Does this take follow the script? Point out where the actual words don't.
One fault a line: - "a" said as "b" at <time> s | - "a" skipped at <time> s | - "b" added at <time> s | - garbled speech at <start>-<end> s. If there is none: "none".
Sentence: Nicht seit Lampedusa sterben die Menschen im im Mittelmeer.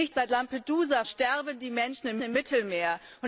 none